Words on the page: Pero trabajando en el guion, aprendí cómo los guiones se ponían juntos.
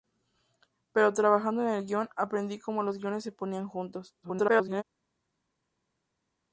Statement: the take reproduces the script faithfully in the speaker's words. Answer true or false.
false